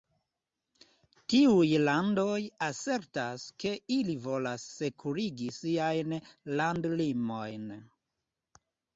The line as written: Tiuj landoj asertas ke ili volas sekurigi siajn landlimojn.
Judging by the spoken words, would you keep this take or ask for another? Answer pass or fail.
pass